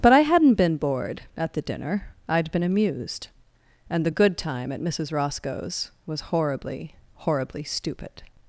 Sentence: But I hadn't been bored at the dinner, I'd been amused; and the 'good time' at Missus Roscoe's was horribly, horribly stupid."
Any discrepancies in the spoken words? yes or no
no